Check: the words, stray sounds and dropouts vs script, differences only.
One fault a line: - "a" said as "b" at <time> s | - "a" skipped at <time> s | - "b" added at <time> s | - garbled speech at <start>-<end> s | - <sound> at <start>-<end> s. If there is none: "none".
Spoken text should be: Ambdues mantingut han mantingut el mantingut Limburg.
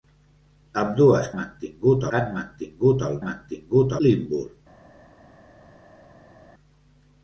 none